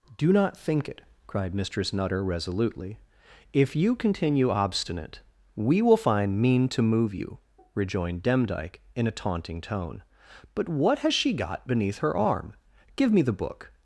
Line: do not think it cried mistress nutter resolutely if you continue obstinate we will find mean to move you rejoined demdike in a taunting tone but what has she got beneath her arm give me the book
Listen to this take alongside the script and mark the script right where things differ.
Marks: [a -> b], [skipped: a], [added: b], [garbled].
do not think it cried mistress nutter resolutely if you continue obstinate we will find mean to move you rejoined demdike in a taunting tone but what has she got beneath her arm give me the book